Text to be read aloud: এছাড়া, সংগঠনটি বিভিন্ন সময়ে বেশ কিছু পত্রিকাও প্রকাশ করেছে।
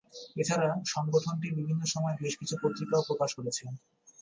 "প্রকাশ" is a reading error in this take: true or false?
false